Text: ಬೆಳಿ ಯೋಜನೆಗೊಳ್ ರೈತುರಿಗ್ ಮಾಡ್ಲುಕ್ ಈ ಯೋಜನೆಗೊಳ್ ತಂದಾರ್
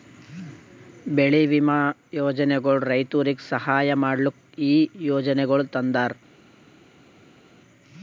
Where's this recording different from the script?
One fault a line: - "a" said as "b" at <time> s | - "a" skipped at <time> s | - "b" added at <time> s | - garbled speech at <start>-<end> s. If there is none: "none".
- "ವಿಮಾ" added at 1.4 s
- "ಸಹಾಯ" added at 3.5 s